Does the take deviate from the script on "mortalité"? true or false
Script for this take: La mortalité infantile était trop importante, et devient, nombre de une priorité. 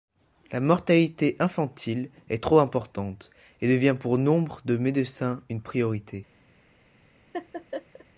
false